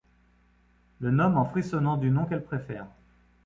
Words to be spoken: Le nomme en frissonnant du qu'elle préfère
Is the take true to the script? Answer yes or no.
no